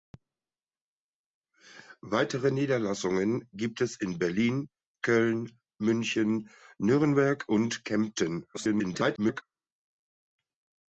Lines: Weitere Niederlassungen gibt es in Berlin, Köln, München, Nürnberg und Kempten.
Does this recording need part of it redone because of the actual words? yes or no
yes